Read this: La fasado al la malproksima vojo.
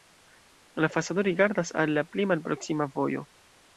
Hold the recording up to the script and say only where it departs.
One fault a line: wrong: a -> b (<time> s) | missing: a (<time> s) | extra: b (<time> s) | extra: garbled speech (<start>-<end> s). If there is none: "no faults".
extra: rigardas (1.2 s)
extra: pli (2.0 s)